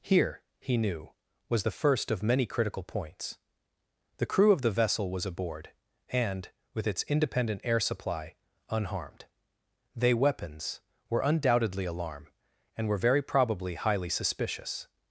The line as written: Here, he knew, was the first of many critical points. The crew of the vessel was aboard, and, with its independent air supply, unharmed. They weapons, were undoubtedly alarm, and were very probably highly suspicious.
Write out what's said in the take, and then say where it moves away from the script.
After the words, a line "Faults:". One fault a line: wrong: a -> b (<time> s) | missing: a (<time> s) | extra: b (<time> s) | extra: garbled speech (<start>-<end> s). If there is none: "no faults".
Here, he knew, was the first of many critical points. The crew of the vessel was aboard, and, with its independent air supply, unharmed. They weapons, were undoubtedly alarm, and were very probably highly suspicious.
Faults:
no faults